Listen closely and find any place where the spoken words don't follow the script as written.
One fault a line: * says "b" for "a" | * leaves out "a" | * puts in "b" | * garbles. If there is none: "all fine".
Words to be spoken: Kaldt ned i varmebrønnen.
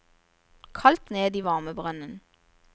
all fine